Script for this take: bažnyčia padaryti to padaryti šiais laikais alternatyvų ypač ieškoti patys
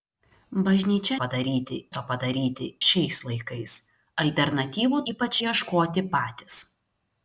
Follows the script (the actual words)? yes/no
yes